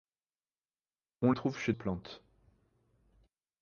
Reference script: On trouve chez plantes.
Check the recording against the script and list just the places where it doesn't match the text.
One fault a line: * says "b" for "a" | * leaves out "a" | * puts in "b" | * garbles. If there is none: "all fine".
all fine